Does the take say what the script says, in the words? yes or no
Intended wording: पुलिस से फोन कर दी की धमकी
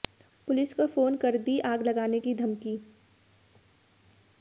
no